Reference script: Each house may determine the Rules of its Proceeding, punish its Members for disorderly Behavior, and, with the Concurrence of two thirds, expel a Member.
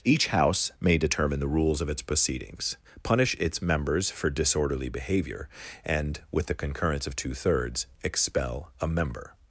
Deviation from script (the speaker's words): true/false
true